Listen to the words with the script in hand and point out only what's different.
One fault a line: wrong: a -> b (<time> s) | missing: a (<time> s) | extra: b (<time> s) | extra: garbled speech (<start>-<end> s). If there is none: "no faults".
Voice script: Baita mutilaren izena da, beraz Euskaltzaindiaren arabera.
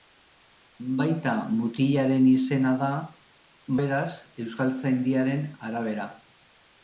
no faults